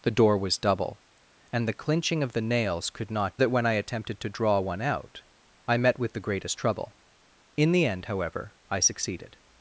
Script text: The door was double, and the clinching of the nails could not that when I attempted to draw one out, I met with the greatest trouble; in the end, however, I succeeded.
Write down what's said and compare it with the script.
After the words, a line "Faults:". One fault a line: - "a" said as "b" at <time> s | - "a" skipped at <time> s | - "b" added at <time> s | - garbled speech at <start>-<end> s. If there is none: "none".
The door was double, and the clinching of the nails could not that when I attempted to draw one out, I met with the greatest trouble; in the end, however, I succeeded.
Faults:
none